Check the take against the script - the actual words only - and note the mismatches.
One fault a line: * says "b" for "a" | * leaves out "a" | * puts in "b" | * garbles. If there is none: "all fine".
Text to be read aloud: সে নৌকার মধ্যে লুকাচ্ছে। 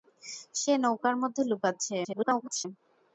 * garbles